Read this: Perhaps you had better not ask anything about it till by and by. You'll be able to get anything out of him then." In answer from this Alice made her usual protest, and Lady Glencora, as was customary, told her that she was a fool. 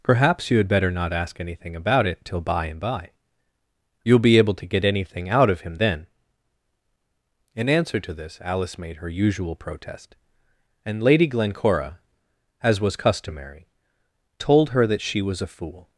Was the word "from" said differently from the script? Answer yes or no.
yes